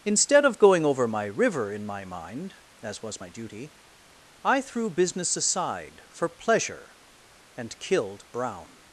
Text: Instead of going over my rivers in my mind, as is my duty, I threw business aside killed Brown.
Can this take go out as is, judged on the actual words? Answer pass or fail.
fail